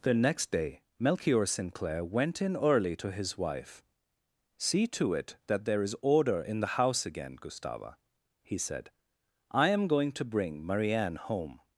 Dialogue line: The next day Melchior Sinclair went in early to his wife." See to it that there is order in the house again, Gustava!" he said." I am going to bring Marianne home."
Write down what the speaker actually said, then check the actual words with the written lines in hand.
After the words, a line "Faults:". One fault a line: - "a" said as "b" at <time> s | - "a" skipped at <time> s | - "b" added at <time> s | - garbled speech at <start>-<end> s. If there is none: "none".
The next day Melchior Sinclair went in early to his wife." See to it that there is order in the house again, Gustava!" he said." I am going to bring Marianne home."
Faults:
none